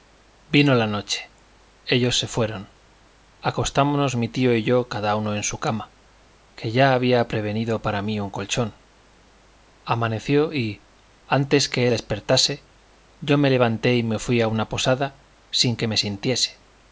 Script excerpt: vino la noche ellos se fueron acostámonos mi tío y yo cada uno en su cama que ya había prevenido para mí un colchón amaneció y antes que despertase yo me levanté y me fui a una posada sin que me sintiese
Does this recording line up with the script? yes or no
yes